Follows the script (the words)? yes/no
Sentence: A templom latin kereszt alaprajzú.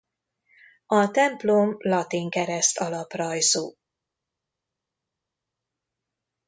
yes